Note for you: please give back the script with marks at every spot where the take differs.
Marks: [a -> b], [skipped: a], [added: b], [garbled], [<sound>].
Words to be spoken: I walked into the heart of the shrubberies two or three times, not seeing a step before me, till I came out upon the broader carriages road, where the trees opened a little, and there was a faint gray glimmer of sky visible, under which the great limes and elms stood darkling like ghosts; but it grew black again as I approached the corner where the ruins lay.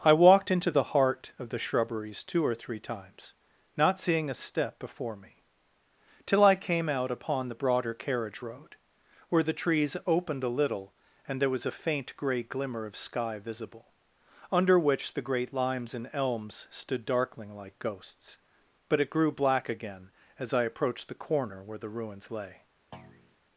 I walked into the heart of the shrubberies two or three times, not seeing a step before me, till I came out upon the broader [carriages -> carriage] road, where the trees opened a little, and there was a faint gray glimmer of sky visible, under which the great limes and elms stood darkling like ghosts; but it grew black again as I approached the corner where the ruins lay. [thud]